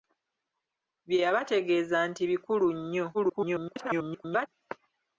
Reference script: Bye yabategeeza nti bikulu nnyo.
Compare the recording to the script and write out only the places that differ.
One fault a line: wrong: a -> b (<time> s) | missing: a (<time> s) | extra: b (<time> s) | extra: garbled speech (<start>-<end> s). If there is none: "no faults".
extra: garbled speech (3.1-4.5 s)